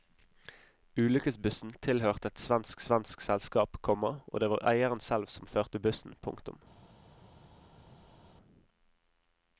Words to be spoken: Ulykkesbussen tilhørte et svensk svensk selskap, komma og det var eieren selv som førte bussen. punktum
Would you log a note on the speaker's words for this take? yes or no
no